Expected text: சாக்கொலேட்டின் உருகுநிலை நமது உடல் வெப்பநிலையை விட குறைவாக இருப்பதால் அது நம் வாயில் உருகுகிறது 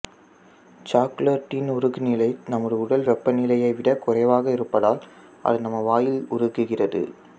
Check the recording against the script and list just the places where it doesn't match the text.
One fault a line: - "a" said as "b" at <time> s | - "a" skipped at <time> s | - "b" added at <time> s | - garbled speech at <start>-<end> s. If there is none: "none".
none